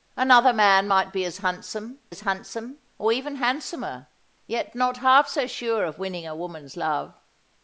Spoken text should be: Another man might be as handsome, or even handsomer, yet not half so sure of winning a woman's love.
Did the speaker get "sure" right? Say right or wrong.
right